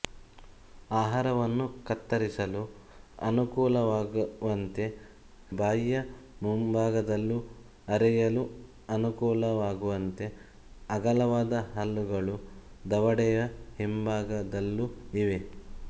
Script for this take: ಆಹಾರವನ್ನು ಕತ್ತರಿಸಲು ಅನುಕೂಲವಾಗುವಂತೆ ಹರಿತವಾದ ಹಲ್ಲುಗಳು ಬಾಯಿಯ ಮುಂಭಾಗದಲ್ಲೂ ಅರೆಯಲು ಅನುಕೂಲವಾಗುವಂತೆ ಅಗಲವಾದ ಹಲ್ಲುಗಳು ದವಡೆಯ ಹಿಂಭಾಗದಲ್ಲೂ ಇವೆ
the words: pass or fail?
fail